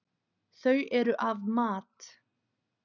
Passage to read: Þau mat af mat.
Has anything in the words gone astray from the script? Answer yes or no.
yes